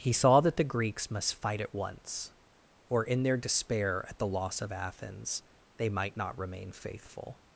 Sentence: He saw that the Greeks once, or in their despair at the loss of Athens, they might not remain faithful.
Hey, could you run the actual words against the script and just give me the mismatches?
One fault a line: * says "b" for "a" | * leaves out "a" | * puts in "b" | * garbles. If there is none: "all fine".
* puts in "must fight at"